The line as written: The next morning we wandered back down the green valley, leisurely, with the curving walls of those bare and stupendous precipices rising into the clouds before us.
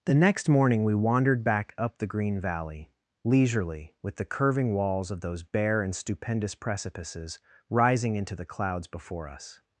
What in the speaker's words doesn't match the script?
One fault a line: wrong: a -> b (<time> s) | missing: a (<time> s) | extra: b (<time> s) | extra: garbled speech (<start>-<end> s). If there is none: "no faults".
wrong: down -> up (1.8 s)